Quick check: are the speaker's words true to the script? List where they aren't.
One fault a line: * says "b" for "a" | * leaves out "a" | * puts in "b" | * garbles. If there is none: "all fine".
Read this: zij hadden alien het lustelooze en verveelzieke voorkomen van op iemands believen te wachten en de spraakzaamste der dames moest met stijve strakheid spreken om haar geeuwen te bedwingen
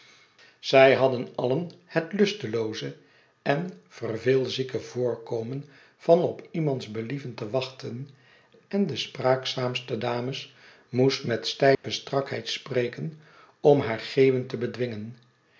* leaves out "der"